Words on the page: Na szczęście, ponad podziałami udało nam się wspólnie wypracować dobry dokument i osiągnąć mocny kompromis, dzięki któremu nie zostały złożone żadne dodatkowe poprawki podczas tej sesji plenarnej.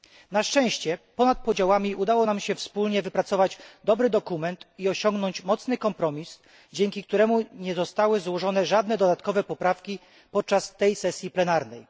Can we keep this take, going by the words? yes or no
yes